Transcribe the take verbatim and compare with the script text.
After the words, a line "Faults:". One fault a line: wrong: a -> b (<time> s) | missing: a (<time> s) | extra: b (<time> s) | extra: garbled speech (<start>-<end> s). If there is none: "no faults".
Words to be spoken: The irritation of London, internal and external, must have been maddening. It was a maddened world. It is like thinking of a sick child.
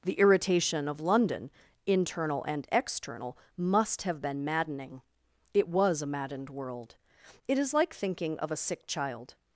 The irritation of London, internal and external, must have been maddening. It was a maddened world. It is like thinking of a sick child.
Faults:
no faults